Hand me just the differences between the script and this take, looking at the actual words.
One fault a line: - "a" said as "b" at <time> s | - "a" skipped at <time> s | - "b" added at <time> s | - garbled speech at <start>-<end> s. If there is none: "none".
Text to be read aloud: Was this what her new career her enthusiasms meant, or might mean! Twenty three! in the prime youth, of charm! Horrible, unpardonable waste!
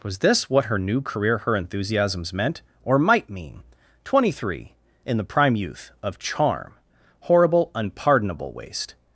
none